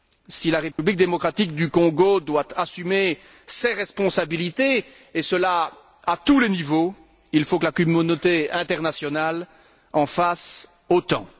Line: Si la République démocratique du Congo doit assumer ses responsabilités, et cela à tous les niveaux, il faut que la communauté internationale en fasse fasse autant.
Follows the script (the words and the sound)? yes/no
no